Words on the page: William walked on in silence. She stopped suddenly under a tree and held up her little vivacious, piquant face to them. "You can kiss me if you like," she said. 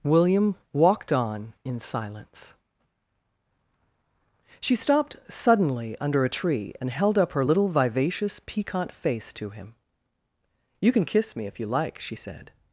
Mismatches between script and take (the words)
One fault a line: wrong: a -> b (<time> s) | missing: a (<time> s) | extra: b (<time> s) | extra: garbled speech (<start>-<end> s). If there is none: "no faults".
wrong: them -> him (9.5 s)